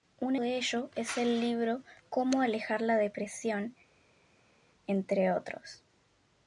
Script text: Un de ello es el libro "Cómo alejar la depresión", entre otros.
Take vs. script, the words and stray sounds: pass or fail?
pass